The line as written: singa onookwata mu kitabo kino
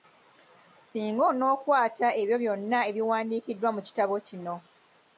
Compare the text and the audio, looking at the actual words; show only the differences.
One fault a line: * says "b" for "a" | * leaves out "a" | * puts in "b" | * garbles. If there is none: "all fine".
* puts in "ebyo byonna ebiwandiikiddwa"